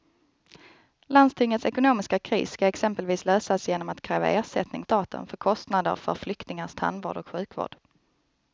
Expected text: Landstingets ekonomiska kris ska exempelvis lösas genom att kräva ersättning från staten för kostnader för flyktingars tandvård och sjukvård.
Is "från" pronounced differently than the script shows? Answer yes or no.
yes